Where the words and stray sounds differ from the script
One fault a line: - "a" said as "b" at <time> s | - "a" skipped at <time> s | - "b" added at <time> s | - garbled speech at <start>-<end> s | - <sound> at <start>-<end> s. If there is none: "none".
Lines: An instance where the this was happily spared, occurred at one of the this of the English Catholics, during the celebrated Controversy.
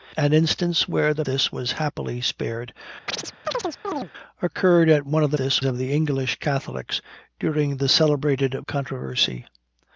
- chirp at 3.1-4.1 s